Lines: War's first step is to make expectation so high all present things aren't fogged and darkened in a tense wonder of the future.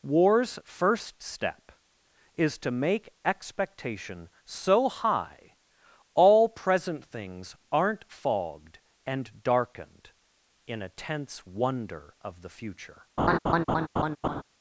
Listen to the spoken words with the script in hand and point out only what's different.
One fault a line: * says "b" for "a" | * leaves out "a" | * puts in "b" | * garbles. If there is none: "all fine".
all fine